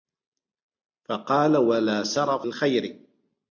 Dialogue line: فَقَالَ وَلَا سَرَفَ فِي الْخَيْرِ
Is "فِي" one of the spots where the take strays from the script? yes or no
yes